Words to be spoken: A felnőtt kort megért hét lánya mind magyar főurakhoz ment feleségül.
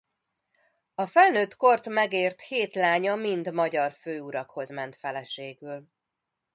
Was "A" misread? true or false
false